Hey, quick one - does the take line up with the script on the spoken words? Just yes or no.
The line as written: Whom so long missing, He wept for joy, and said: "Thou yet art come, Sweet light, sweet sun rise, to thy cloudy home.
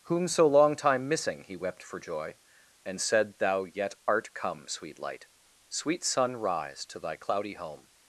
no